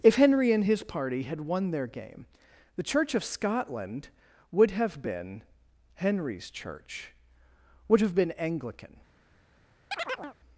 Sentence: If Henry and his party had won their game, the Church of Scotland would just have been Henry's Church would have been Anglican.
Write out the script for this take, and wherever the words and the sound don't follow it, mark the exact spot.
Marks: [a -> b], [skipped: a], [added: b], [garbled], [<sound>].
If Henry and his party had won their game, the Church of Scotland would [skipped: just] have been Henry's Church would have been Anglican. [chirp]